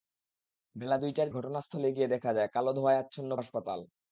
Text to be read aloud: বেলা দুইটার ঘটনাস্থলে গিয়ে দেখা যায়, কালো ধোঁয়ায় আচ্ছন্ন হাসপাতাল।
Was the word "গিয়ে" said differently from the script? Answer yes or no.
no